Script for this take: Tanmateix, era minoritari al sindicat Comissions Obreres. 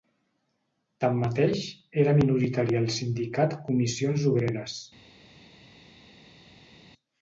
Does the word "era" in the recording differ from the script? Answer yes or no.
no